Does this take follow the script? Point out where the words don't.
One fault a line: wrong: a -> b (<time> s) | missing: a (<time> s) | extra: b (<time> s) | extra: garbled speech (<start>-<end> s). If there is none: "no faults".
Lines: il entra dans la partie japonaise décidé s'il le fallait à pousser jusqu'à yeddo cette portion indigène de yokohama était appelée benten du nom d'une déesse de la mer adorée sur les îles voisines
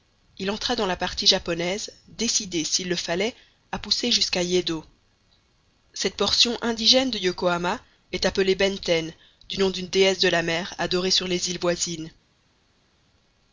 wrong: était -> est (8.1 s)